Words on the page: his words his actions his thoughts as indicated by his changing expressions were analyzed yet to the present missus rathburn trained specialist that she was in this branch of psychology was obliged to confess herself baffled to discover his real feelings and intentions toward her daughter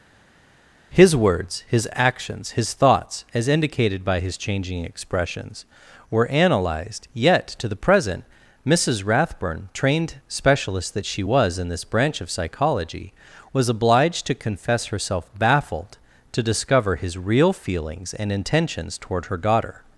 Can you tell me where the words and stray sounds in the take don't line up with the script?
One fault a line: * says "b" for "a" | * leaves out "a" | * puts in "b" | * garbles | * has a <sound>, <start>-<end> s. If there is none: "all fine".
all fine